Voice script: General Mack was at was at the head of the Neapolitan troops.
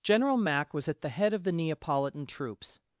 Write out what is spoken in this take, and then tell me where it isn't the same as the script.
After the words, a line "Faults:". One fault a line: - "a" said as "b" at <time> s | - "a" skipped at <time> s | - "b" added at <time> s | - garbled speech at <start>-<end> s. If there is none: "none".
General Mack was at the head of the Neapolitan troops.
Faults:
- "was at" skipped at 1.0 s